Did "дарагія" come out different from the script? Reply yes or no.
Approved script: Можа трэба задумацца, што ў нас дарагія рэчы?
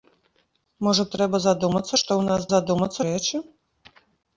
yes